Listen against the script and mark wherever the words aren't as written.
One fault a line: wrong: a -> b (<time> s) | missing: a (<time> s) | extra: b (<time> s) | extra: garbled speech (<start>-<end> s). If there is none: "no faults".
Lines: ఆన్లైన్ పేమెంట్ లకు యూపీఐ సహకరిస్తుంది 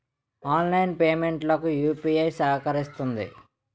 no faults